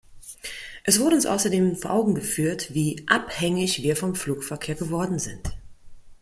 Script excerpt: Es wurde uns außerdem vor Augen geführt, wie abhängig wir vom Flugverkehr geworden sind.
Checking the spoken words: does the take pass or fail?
pass